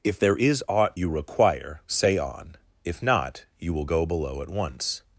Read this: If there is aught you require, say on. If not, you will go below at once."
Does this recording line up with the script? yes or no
yes